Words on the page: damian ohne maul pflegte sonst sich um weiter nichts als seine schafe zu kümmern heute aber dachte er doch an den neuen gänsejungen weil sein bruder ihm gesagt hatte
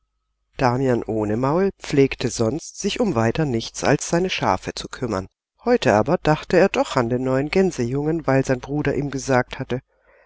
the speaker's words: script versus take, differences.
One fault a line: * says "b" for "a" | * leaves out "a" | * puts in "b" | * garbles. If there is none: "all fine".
all fine